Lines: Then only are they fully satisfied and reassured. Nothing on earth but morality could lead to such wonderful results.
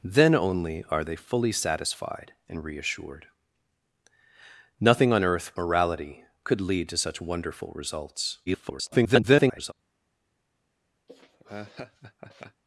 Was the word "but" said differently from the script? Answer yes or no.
yes